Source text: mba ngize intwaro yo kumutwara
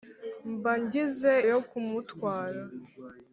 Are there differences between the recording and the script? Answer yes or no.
yes